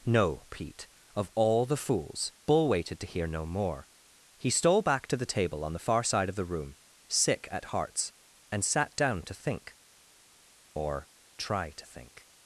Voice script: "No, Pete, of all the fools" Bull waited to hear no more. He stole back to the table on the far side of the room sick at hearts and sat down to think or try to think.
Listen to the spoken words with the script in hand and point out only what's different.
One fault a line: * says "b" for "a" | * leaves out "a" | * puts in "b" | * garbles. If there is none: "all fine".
all fine